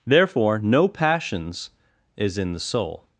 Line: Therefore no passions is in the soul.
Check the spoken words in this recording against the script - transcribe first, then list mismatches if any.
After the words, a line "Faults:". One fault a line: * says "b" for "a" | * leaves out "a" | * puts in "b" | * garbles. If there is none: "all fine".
Therefore no passions is in the soul.
Faults:
all fine